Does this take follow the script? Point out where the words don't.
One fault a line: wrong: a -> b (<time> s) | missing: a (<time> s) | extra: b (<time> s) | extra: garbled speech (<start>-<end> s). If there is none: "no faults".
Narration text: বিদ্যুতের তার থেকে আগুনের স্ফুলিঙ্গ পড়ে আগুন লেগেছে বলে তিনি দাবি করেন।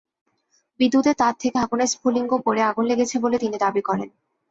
no faults